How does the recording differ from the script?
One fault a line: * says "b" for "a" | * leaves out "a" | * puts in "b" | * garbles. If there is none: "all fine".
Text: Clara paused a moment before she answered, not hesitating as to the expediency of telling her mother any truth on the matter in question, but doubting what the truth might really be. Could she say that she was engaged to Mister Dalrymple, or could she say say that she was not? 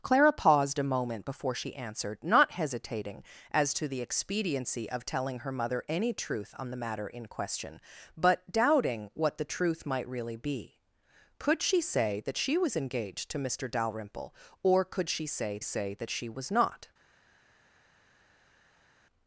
all fine